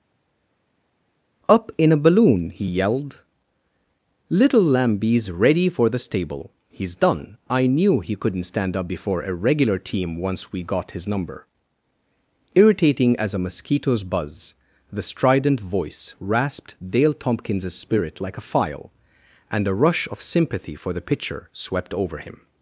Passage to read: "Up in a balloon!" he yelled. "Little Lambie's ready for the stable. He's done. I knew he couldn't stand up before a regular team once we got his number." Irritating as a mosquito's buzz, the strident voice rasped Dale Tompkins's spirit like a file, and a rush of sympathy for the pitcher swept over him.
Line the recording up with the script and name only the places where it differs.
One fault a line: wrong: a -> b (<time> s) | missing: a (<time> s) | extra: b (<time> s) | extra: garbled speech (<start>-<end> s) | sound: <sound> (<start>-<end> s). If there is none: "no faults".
no faults